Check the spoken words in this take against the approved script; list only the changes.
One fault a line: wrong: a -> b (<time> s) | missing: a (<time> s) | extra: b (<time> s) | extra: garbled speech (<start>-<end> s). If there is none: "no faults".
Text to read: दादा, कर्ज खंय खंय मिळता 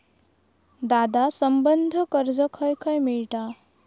extra: संबंद्ध (1.3 s)